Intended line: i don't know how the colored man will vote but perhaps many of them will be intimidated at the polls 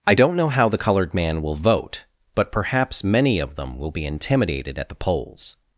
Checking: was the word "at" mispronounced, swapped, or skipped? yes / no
no